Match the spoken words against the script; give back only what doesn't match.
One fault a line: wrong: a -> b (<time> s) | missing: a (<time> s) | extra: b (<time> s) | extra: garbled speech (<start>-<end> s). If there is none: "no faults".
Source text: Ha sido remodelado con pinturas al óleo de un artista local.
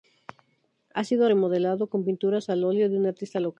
no faults